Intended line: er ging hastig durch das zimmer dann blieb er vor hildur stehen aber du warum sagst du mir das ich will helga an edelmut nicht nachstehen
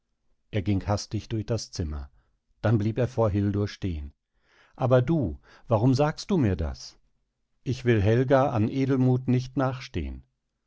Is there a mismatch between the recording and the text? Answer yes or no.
no